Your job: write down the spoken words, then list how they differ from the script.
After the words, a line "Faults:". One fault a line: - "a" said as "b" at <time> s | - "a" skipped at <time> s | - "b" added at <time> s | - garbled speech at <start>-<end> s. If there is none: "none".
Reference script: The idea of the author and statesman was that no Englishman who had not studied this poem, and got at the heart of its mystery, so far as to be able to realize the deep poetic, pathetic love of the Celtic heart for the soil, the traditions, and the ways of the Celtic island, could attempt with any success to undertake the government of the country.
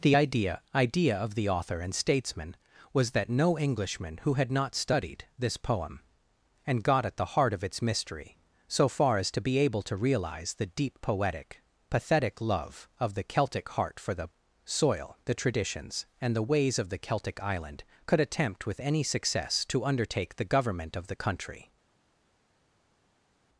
The idea idea of the author and statesman was that no Englishman who had not studied this poem, and got at the heart of its mystery, so far as to be able to realize the deep poetic, pathetic love of the Celtic heart for the soil, the traditions, and the ways of the Celtic island, could attempt with any success to undertake the government of the country.
Faults:
- "idea" added at 0.7 s